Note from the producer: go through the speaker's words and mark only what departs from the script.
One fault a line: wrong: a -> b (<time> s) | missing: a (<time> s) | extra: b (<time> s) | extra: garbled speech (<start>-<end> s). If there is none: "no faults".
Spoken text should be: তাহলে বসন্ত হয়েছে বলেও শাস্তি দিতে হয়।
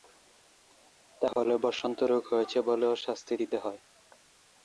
extra: রোগ (2.1 s)